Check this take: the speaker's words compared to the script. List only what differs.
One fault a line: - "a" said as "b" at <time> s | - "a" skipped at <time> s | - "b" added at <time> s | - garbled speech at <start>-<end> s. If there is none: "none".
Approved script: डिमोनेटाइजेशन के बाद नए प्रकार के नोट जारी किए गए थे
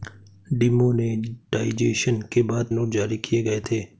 - "नए प्रकार के" skipped at 2.7 s